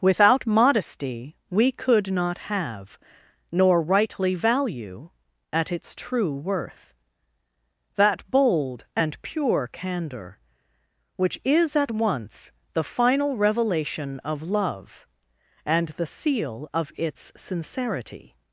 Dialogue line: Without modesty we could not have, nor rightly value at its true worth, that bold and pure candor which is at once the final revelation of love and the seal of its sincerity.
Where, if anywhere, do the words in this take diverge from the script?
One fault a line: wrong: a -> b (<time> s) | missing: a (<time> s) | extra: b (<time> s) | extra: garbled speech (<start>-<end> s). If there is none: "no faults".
no faults